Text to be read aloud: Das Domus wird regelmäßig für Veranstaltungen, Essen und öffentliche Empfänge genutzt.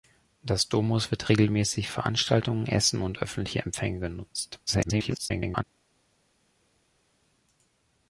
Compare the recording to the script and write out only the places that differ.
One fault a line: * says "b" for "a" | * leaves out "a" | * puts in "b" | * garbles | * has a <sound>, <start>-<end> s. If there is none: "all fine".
* leaves out "für"
* garbles